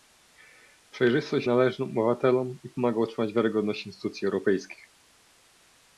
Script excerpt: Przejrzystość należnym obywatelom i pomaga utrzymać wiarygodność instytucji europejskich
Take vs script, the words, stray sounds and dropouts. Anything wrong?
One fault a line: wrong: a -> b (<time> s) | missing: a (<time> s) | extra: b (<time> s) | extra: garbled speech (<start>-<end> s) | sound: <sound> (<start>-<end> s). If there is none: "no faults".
no faults